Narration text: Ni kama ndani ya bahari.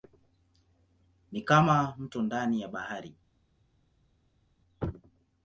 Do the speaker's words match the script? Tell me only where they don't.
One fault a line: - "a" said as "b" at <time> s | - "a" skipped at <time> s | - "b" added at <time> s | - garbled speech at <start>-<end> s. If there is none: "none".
- "mto" added at 2.0 s